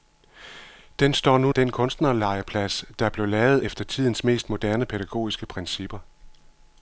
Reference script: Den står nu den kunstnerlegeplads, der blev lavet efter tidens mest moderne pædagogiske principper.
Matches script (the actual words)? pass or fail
pass